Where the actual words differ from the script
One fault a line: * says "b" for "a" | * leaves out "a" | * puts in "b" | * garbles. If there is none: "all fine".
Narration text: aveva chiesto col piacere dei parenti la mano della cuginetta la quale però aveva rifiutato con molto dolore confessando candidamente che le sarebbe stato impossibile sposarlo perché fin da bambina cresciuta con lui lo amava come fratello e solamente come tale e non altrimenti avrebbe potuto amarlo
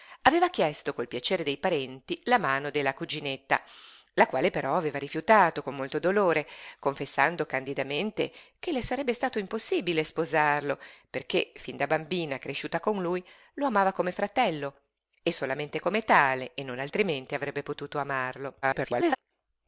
* garbles